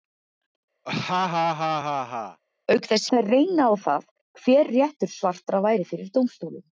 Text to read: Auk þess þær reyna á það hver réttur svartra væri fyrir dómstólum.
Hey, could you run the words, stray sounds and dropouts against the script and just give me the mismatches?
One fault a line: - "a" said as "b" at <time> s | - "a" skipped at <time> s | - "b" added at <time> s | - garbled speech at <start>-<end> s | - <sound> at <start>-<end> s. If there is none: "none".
- laugh at 0.9-2.4 s